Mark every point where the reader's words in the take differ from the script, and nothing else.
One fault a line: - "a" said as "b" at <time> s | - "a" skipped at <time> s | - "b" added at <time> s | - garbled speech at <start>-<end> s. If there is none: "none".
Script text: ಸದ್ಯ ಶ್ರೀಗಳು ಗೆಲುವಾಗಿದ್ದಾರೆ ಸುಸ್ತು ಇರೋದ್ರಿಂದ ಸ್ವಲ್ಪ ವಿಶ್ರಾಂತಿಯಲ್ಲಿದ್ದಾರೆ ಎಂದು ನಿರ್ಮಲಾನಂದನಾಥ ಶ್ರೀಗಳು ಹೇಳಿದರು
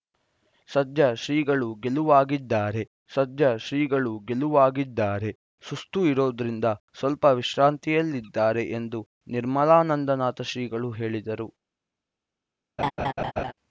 - "ಸದ್ಯ ಶ್ರೀಗಳು ಗೆಲುವಾಗಿದ್ದಾರೆ" added at 3.1 s